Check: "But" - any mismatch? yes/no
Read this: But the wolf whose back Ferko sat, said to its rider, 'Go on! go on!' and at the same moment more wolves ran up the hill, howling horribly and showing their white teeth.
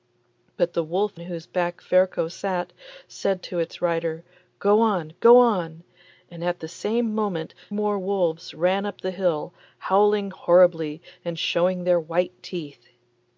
no